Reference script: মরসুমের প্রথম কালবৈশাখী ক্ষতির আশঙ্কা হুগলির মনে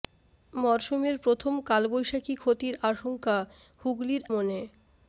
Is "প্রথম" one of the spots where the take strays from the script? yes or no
no